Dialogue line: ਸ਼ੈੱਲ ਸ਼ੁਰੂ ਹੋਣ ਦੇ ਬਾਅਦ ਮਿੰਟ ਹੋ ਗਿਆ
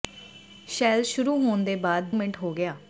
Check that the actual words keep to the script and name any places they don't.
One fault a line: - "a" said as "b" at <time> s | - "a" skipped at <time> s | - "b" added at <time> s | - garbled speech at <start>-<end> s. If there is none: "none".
none